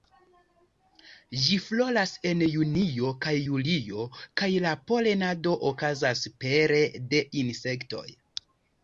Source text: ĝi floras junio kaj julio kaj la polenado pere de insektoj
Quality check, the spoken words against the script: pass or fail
fail